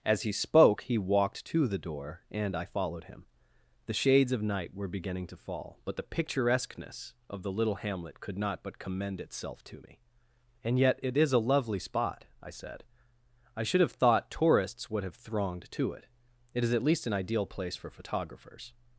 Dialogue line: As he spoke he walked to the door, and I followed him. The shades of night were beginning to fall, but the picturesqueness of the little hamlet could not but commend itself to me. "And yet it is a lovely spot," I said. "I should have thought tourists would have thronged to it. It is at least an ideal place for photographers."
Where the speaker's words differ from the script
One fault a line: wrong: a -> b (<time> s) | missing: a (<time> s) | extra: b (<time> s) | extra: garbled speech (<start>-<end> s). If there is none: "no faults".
no faults